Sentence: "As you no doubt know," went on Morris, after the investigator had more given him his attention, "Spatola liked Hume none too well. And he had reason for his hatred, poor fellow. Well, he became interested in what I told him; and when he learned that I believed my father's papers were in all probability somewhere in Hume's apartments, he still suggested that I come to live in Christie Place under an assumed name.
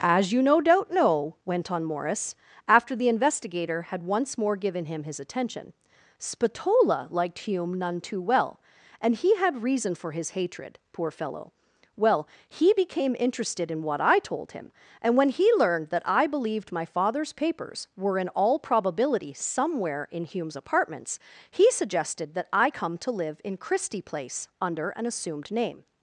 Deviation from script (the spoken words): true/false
true